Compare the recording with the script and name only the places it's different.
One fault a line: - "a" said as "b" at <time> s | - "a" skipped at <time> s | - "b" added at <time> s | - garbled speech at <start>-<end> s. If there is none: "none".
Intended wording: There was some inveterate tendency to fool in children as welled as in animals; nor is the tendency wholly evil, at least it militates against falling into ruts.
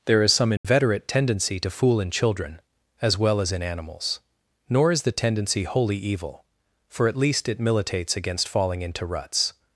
- "was" said as "is" at 0.2 s
- "welled" said as "well" at 3.2 s
- "for" added at 6.9 s